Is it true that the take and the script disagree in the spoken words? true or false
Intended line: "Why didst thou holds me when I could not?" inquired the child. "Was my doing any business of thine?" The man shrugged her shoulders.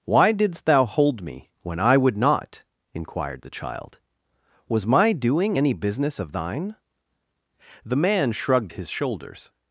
true